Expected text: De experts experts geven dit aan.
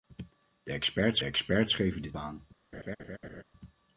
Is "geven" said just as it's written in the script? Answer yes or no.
yes